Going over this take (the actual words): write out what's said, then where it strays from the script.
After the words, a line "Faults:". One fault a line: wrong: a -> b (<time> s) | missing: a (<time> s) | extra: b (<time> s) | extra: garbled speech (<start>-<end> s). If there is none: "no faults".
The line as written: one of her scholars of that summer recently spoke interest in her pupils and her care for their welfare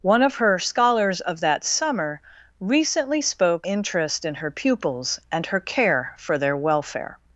one of her scholars of that summer recently spoke interest in her pupils and her care for their welfare
Faults:
no faults